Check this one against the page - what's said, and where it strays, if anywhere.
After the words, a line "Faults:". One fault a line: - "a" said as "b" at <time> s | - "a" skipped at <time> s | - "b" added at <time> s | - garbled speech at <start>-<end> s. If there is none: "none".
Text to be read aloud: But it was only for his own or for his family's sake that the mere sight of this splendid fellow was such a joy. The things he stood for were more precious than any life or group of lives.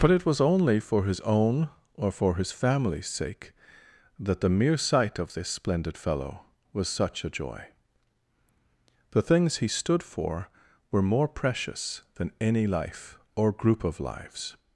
But it was only for his own or for his family's sake that the mere sight of this splendid fellow was such a joy. The things he stood for were more precious than any life or group of lives.
Faults:
none